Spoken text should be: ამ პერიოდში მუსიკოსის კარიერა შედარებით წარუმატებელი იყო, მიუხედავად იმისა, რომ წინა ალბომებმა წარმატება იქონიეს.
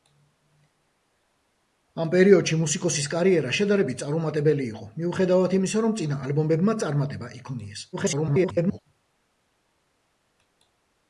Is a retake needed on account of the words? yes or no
yes